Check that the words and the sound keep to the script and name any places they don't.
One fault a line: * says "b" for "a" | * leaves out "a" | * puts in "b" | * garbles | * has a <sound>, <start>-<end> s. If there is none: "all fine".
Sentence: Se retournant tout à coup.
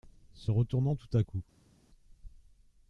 all fine